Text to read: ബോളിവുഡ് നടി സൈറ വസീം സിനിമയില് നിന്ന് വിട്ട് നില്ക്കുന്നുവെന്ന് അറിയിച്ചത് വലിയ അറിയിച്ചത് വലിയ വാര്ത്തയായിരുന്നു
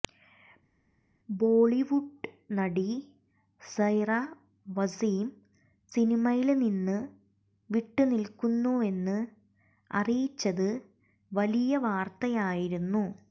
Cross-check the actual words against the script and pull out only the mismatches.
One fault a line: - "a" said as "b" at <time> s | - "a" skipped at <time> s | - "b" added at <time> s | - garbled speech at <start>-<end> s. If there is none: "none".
- "അറിയിച്ചത് വലിയ" skipped at 11.8 s